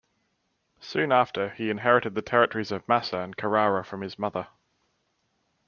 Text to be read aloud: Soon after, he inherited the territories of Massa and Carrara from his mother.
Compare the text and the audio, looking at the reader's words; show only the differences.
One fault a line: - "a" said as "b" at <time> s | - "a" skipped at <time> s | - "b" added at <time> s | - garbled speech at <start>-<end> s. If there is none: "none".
none